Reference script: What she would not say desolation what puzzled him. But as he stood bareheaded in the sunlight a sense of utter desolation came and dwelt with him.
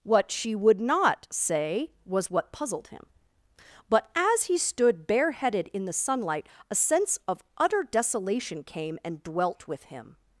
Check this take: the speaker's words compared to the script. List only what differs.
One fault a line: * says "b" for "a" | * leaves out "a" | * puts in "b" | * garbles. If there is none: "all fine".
* says "was" for "desolation"